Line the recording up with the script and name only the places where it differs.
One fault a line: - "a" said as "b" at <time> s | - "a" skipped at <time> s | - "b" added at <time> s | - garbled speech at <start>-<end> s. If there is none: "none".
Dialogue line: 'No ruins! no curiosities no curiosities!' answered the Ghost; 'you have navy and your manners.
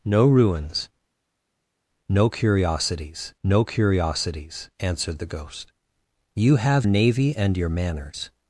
none